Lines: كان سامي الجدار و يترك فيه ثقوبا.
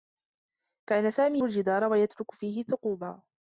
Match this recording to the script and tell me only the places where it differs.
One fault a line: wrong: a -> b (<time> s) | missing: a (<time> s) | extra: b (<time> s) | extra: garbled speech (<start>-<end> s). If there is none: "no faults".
no faults